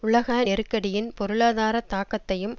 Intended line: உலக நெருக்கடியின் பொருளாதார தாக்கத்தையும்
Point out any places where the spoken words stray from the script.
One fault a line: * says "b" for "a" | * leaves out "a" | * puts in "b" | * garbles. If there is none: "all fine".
all fine